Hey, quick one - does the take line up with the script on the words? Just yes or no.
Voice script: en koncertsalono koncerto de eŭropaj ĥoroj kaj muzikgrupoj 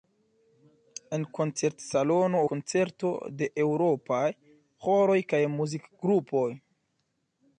yes